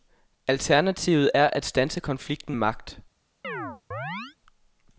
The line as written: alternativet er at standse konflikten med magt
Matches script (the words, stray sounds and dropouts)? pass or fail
fail